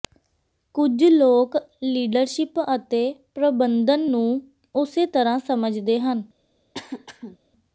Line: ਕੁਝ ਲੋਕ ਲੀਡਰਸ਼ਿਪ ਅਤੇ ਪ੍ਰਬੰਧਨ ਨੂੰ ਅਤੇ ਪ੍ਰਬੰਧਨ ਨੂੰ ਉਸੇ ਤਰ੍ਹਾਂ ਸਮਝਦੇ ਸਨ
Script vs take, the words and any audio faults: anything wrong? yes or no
yes